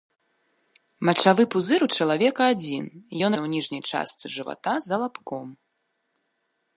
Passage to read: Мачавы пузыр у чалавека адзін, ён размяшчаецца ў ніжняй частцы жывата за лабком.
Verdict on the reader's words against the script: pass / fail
fail